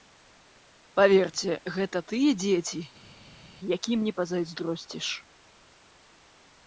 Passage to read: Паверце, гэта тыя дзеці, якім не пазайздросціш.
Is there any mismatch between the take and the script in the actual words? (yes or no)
no